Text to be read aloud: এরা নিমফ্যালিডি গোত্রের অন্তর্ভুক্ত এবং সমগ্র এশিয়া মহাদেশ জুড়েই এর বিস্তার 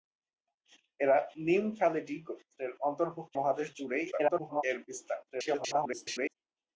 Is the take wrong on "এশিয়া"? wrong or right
wrong